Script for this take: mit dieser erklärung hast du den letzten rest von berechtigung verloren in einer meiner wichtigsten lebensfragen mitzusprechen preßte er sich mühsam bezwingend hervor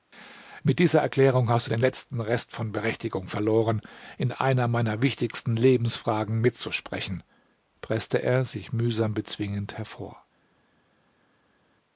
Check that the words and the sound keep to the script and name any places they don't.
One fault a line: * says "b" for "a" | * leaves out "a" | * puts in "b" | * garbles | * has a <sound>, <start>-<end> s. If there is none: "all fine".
all fine